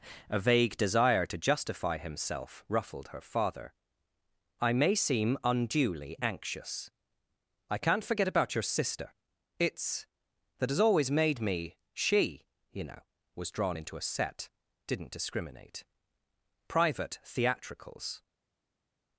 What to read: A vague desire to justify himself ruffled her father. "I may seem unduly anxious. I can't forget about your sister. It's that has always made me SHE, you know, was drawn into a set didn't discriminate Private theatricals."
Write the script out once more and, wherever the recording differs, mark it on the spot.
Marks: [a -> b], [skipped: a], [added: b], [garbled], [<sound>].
A vague desire to justify himself ruffled her father. "I may seem unduly anxious. I can't forget about your sister. It's that has always made me SHE, you know, was drawn into a set didn't discriminate Private theatricals."